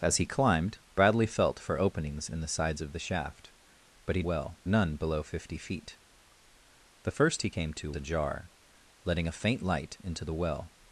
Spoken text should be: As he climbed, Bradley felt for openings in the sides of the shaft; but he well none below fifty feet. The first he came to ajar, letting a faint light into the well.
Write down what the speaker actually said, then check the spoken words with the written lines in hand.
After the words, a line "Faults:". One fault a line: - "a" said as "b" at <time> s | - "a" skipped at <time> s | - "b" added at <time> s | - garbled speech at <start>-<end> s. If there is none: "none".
As he climbed, Bradley felt for openings in the sides of the shaft; but he well none below fifty feet. The first he came to ajar, letting a faint light into the well.
Faults:
none